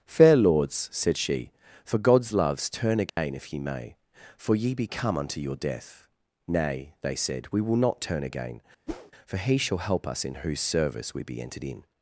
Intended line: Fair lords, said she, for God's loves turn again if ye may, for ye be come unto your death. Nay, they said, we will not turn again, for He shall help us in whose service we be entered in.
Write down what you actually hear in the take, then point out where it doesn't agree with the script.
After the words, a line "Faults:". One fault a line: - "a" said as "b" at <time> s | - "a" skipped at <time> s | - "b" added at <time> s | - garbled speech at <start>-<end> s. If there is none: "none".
Fair lords, said she, for God's loves turn again if ye may, for ye be come unto your death. Nay, they said, we will not turn again, for He shall help us in whose service we be entered in.
Faults:
none